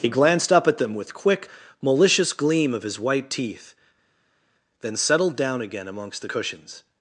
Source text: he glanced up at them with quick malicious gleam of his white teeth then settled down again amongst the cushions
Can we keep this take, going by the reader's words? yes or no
yes